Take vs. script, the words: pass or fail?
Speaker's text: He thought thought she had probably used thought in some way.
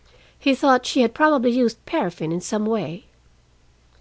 fail